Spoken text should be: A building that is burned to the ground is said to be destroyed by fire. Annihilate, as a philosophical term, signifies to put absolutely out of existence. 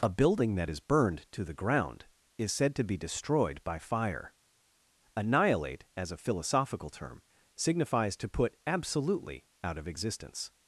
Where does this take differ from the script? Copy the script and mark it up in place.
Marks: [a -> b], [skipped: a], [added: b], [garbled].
A building that is burned to the ground is said to be destroyed by fire. Annihilate, as a philosophical term, signifies to put absolutely out of existence.